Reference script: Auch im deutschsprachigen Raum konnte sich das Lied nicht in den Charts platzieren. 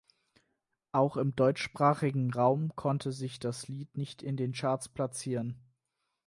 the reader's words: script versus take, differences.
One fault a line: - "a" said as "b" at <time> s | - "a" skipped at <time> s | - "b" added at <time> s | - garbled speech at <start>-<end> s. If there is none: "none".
none